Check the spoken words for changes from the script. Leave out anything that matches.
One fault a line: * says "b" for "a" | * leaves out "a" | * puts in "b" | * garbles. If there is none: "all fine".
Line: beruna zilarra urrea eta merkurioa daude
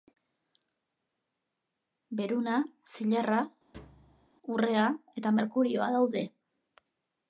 all fine